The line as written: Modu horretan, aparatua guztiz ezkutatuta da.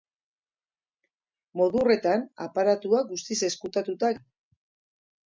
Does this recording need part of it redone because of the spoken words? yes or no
no